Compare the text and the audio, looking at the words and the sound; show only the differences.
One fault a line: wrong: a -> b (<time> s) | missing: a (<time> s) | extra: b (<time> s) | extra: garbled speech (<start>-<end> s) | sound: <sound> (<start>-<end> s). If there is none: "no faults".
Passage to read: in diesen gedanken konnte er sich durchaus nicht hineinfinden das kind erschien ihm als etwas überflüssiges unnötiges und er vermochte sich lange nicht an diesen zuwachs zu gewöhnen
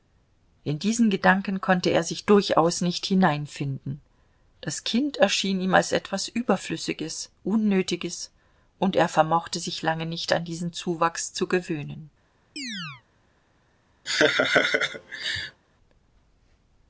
sound: chirp (12.6-13.0 s)
sound: laugh (14.1-15.6 s)